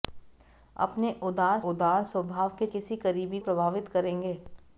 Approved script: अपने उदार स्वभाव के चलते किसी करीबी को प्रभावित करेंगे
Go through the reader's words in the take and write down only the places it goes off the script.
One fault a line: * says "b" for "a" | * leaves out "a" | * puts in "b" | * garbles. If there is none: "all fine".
* puts in "उदार"
* leaves out "चलते"
* leaves out "को"